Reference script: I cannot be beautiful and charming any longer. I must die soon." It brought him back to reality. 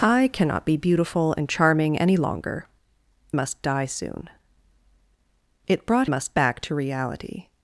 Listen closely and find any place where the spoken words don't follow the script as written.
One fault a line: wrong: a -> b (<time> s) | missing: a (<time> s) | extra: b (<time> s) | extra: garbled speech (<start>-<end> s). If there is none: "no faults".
missing: I (2.7 s)
wrong: him -> must (6.0 s)